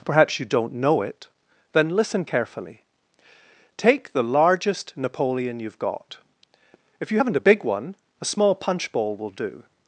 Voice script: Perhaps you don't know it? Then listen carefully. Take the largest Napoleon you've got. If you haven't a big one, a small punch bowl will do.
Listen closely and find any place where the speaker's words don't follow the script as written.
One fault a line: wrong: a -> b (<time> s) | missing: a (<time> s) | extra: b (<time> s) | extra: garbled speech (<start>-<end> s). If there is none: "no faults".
no faults